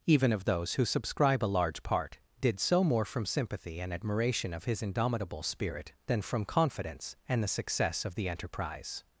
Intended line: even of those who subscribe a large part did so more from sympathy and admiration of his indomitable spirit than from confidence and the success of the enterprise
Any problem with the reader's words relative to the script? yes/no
no